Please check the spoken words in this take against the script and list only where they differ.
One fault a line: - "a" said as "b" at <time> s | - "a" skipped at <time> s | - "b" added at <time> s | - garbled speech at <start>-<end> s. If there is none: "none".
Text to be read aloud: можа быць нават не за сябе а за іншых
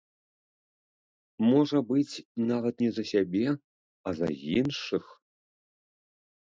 none